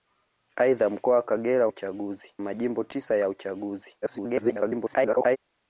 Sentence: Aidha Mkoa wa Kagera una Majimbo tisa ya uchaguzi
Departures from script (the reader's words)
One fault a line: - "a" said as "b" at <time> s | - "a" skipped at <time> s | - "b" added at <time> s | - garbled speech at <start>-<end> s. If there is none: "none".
- "una" said as "uchaguzi" at 1.7 s
- garbled speech at 4.0-5.4 s